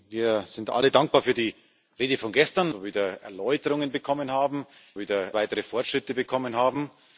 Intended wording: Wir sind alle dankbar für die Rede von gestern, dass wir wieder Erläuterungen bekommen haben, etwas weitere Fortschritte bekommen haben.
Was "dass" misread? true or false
true